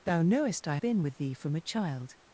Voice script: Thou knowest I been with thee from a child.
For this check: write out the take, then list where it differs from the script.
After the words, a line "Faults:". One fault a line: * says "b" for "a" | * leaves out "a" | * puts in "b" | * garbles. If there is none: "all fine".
Thou knowest I been with thee from a child.
Faults:
all fine